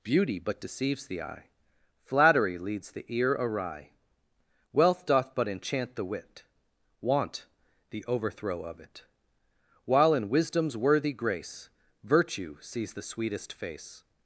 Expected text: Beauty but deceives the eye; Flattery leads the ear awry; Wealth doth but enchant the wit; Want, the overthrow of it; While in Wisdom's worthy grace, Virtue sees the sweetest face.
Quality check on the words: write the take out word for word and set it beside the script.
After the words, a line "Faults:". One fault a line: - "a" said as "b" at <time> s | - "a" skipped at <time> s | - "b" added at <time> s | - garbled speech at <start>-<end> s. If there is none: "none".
Beauty but deceives the eye; Flattery leads the ear awry; Wealth doth but enchant the wit; Want, the overthrow of it; While in Wisdom's worthy grace, Virtue sees the sweetest face.
Faults:
none